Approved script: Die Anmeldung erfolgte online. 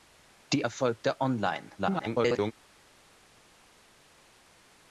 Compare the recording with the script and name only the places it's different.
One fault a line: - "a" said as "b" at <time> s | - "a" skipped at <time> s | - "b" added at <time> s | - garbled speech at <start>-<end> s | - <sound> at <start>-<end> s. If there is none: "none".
- "Anmeldung" skipped at 0.7 s
- garbled speech at 1.8-2.5 s